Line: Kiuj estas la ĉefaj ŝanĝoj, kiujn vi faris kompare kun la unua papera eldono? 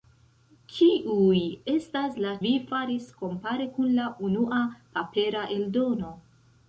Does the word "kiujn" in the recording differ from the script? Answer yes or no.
yes